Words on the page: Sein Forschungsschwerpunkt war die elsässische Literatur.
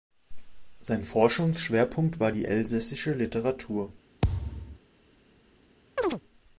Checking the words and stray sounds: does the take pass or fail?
fail